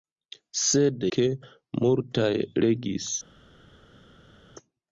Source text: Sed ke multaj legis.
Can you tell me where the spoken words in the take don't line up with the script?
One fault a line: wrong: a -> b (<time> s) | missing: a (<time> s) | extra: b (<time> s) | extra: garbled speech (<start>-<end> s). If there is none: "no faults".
no faults